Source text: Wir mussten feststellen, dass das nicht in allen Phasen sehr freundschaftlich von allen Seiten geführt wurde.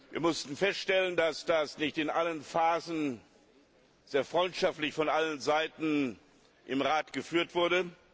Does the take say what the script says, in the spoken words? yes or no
no